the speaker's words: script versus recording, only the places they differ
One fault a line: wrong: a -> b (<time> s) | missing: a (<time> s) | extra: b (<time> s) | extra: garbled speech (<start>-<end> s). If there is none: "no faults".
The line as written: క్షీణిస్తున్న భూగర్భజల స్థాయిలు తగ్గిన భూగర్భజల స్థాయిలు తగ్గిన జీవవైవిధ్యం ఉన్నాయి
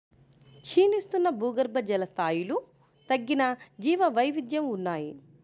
missing: భూగర్భజల స్థాయిలు తగ్గిన (3.4 s)